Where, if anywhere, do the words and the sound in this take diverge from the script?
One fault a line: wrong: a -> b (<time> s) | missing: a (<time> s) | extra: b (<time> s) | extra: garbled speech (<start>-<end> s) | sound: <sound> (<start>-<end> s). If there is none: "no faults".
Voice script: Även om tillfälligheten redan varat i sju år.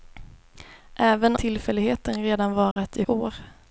missing: om (1.4 s)
sound: dropout (2.7-2.8 s)
missing: sju (3.1 s)